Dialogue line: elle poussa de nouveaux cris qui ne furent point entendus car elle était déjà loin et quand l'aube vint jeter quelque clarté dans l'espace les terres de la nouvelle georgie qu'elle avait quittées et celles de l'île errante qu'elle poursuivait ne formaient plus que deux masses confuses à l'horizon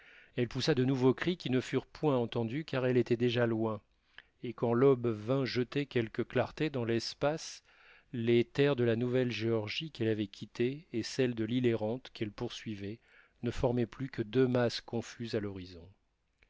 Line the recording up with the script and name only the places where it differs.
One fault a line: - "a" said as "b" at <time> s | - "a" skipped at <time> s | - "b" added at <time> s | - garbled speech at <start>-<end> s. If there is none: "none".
none